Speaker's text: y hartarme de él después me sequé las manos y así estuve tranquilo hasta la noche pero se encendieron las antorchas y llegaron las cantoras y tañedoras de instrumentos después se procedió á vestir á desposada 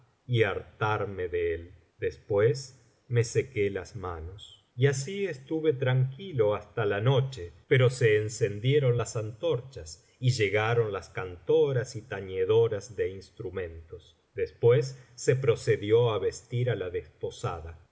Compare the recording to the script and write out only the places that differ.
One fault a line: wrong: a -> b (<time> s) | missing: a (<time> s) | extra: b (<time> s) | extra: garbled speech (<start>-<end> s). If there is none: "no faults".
extra: la (16.7 s)